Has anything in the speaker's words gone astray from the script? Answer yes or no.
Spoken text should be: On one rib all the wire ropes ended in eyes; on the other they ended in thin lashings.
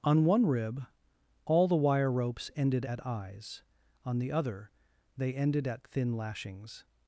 yes